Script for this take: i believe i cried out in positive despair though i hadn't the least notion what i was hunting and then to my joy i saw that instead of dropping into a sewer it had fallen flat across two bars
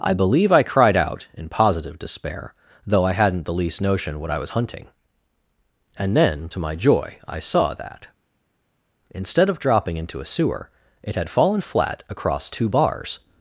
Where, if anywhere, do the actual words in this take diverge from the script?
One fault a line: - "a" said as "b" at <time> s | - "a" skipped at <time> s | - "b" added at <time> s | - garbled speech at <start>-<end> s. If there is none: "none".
none